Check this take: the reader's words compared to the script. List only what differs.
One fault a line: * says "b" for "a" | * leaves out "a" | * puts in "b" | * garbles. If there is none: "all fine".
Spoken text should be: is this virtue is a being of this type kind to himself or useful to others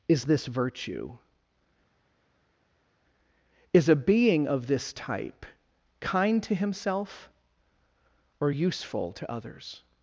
all fine